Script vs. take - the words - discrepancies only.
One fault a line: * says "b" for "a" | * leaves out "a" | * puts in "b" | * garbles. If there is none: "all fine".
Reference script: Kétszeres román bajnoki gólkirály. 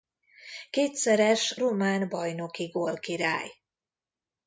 all fine